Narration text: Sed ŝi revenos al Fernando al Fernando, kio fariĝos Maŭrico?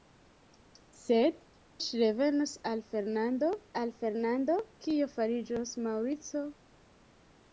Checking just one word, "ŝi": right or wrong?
right